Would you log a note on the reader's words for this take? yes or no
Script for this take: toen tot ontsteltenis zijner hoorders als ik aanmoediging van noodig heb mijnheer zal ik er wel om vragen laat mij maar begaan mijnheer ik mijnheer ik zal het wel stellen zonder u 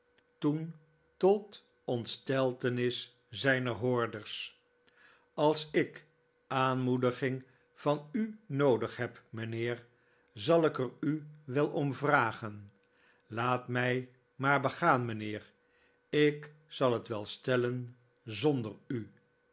yes